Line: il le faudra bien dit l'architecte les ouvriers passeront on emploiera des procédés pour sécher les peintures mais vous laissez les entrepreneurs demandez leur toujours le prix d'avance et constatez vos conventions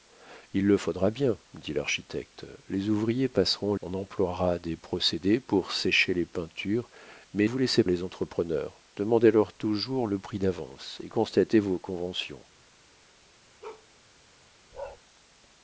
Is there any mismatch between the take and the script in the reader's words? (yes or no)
no